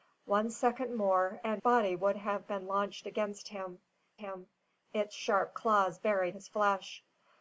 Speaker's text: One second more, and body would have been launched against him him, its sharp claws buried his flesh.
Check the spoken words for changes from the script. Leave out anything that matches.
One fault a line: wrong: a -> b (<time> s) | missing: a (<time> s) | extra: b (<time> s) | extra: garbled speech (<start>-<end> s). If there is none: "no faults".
no faults